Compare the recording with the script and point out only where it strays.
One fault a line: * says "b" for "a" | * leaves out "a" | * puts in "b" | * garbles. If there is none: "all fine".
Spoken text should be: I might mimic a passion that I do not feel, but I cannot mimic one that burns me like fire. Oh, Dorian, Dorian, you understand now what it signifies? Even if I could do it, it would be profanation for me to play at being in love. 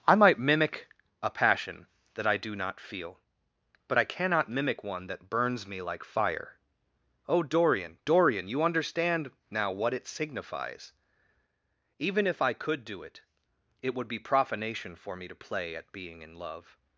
all fine